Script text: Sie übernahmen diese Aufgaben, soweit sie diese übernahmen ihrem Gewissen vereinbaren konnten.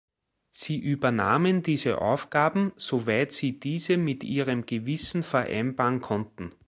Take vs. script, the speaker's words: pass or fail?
fail